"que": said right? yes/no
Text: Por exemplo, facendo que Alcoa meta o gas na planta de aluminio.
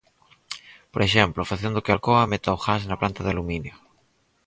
yes